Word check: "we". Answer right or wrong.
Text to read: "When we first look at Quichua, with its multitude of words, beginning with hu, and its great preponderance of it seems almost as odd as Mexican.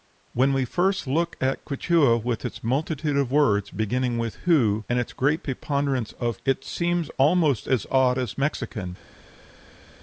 right